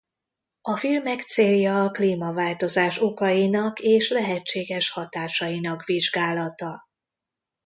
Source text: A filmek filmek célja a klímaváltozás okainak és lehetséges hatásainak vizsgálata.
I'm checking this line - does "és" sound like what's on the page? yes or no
yes